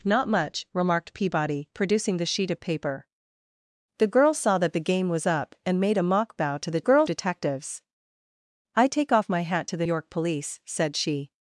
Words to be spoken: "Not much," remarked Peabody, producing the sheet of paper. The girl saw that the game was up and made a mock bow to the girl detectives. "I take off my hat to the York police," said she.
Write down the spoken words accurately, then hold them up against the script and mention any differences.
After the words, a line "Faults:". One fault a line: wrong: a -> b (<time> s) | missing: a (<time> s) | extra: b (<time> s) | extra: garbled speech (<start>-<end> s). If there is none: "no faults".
"Not much," remarked Peabody, producing the sheet of paper. The girl saw that the game was up and made a mock bow to the girl detectives. "I take off my hat to the York police," said she.
Faults:
no faults